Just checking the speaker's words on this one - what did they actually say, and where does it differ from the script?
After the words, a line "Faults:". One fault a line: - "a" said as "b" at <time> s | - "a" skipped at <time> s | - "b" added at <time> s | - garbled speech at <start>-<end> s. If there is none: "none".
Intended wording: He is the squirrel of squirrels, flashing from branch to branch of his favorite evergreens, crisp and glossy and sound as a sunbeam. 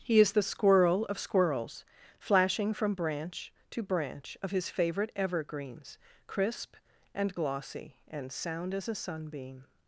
He is the squirrel of squirrels, flashing from branch to branch of his favorite evergreens, crisp and glossy and sound as a sunbeam.
Faults:
none